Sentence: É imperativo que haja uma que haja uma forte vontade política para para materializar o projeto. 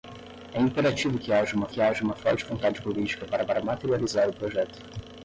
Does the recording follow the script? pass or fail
pass